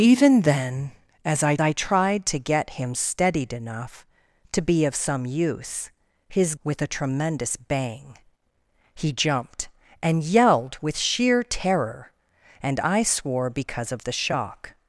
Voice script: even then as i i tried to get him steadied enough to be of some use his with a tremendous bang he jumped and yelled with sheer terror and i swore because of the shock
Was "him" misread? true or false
false